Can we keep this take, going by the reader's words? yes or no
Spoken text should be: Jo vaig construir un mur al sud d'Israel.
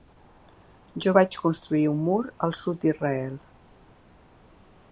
yes